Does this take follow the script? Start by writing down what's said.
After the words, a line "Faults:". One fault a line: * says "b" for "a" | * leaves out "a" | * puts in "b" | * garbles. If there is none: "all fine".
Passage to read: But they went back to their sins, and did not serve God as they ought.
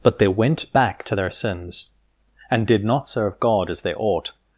But they went back to their sins, and did not serve God as they ought.
Faults:
all fine